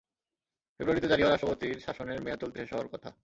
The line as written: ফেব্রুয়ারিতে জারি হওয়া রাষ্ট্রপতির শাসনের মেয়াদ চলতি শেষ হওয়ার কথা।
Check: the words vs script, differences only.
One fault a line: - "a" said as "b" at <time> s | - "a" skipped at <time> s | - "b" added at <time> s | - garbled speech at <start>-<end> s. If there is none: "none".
none